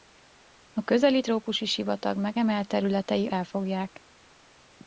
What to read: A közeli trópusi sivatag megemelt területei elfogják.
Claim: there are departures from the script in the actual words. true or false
false